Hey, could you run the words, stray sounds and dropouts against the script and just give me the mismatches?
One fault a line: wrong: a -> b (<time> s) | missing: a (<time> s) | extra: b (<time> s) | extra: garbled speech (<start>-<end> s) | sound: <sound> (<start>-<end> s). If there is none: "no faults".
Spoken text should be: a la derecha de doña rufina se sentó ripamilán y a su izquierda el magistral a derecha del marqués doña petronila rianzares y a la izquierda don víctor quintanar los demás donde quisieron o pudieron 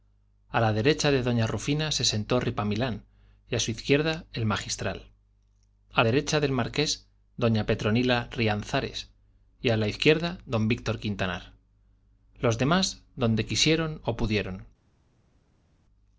no faults